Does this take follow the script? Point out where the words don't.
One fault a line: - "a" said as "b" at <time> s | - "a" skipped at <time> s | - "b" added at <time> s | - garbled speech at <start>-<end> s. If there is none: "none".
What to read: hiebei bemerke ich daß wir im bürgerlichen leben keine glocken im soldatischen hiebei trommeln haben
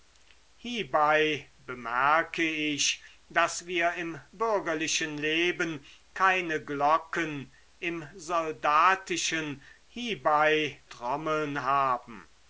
none